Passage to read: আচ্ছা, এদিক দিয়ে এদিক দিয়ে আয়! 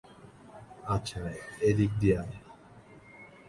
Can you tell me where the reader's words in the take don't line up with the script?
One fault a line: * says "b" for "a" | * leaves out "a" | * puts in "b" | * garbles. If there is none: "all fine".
* leaves out "এদিক দিয়ে"